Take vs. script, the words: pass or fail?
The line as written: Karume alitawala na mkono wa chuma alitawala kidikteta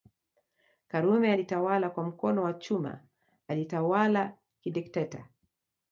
fail